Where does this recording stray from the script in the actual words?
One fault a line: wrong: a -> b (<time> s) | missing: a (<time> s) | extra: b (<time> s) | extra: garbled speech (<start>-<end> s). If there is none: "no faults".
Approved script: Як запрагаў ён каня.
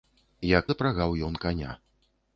no faults